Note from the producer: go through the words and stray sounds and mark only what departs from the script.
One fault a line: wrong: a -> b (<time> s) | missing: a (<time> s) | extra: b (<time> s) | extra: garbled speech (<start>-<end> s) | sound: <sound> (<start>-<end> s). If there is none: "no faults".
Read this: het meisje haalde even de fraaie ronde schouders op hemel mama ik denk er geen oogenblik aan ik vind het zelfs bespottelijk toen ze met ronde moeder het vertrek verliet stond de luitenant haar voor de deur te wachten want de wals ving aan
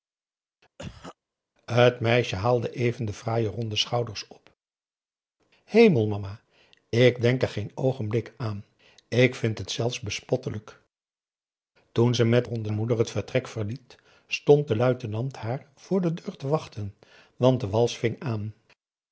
sound: cough (0.8-1.2 s)